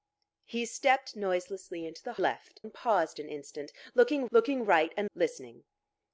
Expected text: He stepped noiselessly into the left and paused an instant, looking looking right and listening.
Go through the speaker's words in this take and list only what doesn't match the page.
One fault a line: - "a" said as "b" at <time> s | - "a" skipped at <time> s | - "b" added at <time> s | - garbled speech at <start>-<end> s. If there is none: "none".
none